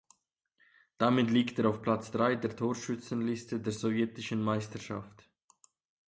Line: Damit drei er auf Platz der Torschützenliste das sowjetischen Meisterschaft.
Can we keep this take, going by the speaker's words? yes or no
no